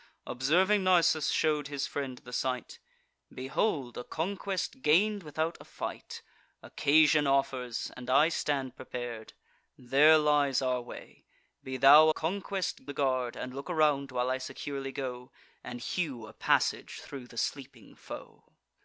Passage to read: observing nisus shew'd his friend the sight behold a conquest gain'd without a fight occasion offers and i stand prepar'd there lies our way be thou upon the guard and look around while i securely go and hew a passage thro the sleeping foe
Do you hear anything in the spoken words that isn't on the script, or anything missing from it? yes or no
yes